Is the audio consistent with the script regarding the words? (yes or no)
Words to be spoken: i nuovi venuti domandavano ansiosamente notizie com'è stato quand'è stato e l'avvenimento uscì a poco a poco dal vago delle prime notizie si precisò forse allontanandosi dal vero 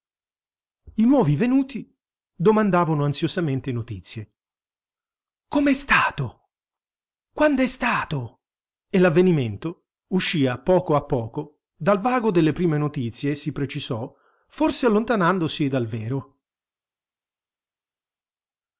yes